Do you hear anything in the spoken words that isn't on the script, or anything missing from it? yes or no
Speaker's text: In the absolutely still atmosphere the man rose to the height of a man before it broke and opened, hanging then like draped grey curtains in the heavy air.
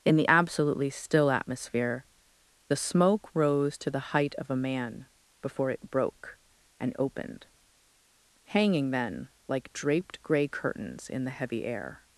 yes